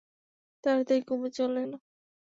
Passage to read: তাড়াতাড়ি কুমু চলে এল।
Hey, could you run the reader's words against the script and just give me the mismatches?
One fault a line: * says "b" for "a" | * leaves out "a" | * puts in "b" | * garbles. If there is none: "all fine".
all fine